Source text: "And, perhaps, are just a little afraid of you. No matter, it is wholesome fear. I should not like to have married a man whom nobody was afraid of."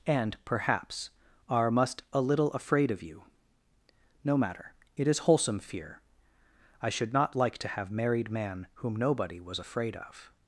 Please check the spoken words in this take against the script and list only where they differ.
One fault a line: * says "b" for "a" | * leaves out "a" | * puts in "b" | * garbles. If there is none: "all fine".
* says "must" for "just"
* leaves out "a"